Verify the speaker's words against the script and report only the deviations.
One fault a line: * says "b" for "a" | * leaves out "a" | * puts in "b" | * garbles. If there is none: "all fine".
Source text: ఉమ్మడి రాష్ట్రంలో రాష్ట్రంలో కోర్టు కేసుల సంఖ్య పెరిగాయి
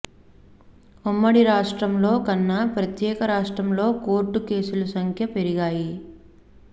* puts in "కన్నా ప్రత్యేక"